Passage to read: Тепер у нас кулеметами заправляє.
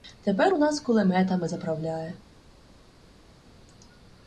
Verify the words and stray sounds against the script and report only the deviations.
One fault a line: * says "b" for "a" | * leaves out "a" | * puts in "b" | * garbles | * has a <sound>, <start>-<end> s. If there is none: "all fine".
all fine